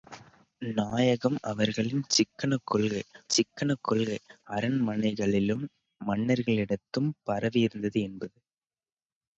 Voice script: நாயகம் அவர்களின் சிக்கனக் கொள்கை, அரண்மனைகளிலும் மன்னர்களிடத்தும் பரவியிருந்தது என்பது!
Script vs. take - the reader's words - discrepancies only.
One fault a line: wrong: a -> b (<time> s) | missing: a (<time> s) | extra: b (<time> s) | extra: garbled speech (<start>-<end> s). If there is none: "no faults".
extra: சிக்கனக் கொள்கை (3.3 s)